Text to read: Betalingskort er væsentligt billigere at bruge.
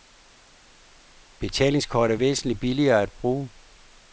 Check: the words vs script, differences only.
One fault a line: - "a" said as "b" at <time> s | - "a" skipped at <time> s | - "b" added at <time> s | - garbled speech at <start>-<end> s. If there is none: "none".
none